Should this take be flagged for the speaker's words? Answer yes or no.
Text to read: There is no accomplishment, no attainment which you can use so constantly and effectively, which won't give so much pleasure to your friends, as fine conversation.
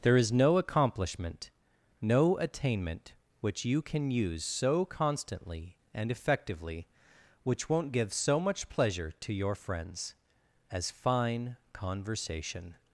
no